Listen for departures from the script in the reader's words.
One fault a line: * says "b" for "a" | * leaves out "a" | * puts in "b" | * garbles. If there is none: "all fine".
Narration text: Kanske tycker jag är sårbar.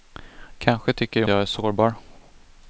all fine